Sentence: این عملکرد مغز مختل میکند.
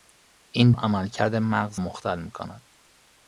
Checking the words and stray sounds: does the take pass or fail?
pass